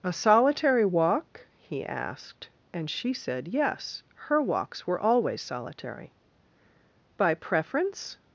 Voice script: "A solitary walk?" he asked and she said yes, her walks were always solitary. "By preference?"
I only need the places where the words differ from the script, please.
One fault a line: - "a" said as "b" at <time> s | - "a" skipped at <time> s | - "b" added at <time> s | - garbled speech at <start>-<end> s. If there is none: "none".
none